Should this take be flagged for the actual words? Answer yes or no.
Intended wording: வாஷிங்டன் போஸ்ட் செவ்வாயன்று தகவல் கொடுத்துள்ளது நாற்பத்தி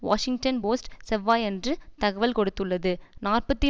no